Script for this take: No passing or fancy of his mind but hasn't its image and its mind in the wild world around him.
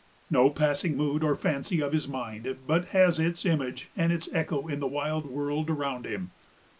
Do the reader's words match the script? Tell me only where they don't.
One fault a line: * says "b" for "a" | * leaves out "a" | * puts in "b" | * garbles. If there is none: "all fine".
* puts in "mood"
* says "has" for "hasn't"
* says "echo" for "mind"